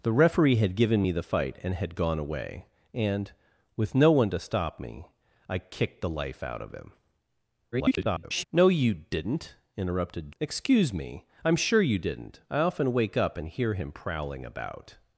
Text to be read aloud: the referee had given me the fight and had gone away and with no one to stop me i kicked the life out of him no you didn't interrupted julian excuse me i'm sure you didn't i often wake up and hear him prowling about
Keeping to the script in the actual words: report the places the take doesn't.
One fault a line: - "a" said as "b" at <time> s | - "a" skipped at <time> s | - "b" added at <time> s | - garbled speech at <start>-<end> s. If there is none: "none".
- garbled speech at 7.7-8.4 s
- "julian" skipped at 10.3 s